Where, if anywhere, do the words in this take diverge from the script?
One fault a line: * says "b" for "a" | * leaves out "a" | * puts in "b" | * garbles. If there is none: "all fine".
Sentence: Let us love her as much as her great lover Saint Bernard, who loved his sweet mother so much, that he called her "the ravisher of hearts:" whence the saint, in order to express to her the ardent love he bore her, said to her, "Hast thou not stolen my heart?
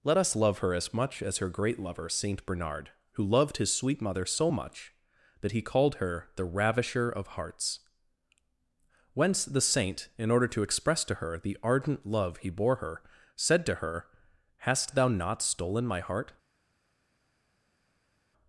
all fine